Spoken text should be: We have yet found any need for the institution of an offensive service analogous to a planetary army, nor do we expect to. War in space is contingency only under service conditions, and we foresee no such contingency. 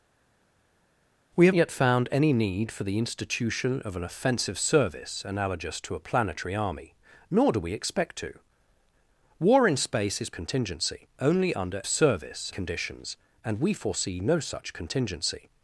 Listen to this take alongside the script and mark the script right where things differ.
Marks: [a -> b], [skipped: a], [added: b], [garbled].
We have yet found any need for the institution of an offensive service analogous to a planetary army, nor do we expect to. War in space is contingency only under service conditions, and we foresee no such contingency.